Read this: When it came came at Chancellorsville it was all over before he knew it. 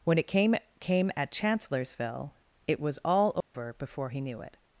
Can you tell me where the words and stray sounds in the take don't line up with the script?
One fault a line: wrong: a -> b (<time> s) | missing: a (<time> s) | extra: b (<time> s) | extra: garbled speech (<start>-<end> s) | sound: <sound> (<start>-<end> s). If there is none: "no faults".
sound: dropout (3.4-3.5 s)